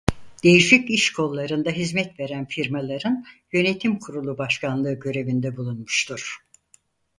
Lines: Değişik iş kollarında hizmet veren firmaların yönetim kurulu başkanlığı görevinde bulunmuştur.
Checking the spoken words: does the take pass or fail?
pass